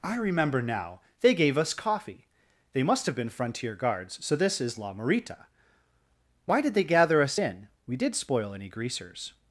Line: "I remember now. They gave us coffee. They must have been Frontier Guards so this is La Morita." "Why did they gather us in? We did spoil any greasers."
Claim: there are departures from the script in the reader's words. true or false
false